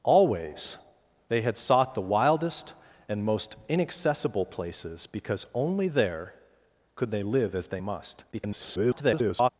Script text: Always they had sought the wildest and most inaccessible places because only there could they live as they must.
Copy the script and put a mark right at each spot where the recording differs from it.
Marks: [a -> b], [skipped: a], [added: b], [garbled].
Always they had sought the wildest and most inaccessible places because only there could they live as they must. [garbled]